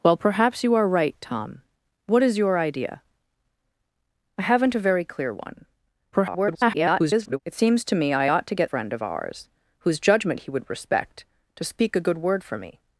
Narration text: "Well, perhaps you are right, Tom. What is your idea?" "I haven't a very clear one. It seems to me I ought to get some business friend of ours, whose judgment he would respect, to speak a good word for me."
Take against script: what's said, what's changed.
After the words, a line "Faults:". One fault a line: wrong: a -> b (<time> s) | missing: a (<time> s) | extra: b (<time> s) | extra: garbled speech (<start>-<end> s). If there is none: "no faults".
"Well, perhaps you are right, Tom. What is your idea?" "I haven't a very clear one. [garbled] It seems to me I ought to get friend of ours, whose judgment he would respect, to speak a good word for me."
Faults:
extra: garbled speech (6.1-7.4 s)
missing: some business (8.7 s)